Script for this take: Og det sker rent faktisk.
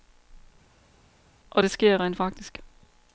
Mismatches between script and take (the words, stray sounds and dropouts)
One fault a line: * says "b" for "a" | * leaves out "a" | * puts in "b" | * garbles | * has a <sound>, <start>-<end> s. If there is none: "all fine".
all fine